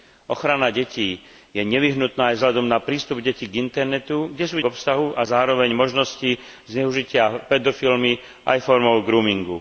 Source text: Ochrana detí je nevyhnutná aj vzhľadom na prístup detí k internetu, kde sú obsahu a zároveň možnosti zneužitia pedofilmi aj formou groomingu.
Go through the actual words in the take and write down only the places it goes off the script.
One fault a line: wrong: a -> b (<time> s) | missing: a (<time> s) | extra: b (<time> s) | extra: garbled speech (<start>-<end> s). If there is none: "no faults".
no faults